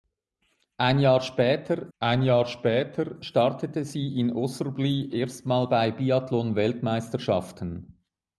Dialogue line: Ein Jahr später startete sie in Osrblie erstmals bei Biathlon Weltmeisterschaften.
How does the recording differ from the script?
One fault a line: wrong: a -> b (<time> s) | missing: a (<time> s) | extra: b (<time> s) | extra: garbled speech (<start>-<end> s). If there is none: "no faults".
extra: ein Jahr später (2.0 s)